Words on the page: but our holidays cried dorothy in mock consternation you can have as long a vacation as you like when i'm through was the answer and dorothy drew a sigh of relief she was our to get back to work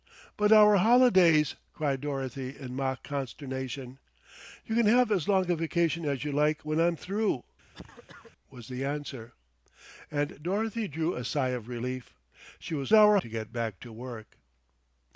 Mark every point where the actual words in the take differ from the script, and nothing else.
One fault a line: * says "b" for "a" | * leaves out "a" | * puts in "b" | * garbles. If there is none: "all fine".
all fine